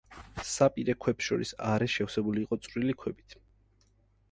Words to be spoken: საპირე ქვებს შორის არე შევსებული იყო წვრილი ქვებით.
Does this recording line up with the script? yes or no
yes